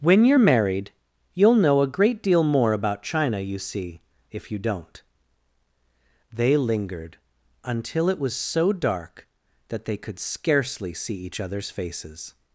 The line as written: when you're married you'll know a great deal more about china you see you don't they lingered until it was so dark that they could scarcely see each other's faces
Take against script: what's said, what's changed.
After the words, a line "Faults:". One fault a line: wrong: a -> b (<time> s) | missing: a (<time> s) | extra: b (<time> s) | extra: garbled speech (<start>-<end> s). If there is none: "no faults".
when you're married you'll know a great deal more about china you see if you don't they lingered until it was so dark that they could scarcely see each other's faces
Faults:
extra: if (4.3 s)